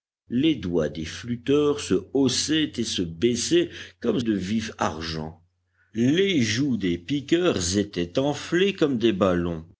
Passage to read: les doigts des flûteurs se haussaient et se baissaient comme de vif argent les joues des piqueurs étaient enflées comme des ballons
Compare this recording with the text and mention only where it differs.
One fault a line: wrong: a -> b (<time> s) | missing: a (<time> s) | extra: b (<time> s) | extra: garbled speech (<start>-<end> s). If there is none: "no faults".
no faults